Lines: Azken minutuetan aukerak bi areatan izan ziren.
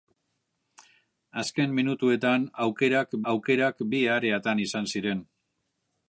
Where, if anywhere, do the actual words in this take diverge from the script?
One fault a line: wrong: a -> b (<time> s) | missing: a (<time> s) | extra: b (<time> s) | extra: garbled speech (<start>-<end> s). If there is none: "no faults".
extra: aukerak (3.3 s)